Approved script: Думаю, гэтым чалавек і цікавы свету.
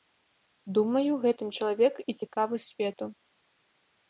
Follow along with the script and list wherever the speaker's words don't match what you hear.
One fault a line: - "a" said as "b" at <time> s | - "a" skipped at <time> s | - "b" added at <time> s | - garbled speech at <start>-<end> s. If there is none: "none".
none